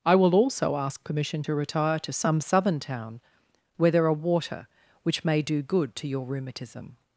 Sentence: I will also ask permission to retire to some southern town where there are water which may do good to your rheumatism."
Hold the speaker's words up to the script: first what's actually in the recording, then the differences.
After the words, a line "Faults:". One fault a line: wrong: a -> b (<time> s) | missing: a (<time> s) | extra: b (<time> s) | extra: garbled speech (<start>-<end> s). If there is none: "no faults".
I will also ask permission to retire to some southern town where there are water which may do good to your rheumatism."
Faults:
no faults